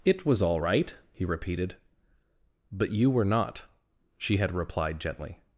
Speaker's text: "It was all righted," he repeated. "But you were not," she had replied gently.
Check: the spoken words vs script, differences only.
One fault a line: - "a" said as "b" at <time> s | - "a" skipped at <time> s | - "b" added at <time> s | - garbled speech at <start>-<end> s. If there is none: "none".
- "righted" said as "right" at 0.6 s